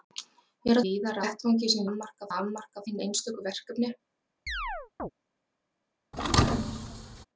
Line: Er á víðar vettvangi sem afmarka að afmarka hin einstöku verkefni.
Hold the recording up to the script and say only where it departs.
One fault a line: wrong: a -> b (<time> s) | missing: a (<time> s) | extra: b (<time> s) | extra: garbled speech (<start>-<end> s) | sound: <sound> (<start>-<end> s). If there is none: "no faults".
sound: chirp (4.5-5.1 s)
sound: thud (6.1-7.3 s)